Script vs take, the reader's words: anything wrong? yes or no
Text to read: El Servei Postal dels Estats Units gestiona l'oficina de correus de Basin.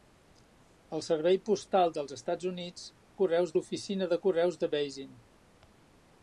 yes